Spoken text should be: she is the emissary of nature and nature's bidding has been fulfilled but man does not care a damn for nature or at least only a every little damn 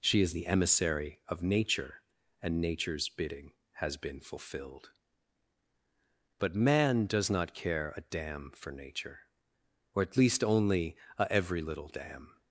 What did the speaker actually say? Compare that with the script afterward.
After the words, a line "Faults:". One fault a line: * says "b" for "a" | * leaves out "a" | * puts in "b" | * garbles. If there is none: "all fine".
she is the emissary of nature and nature's bidding has been fulfilled but man does not care a damn for nature or at least only a every little damn
Faults:
all fine